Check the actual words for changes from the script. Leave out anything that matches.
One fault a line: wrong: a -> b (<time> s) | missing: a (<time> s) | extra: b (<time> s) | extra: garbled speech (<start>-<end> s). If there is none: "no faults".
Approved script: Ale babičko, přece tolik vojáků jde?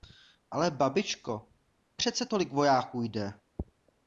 no faults